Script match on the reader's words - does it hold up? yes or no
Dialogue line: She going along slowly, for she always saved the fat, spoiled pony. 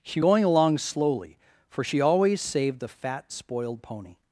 yes